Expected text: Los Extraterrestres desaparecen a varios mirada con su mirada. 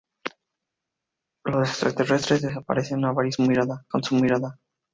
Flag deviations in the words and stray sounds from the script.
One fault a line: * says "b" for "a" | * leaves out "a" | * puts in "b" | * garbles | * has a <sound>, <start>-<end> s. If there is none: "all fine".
all fine